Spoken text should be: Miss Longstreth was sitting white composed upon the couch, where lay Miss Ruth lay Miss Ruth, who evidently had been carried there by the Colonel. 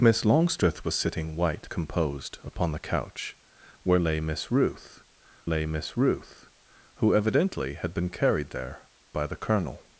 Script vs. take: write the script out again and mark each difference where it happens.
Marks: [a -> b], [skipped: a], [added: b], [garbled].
Miss Longstreth was sitting white composed upon the couch, where lay Miss Ruth lay Miss Ruth, who evidently had been carried there by the Colonel.